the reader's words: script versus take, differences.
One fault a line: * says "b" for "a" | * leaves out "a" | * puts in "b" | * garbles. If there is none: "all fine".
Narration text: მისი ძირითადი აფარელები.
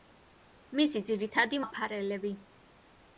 all fine